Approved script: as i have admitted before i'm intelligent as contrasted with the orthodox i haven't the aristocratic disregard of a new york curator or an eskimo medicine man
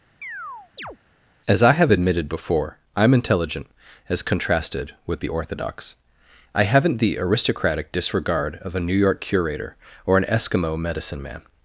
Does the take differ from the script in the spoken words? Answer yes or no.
no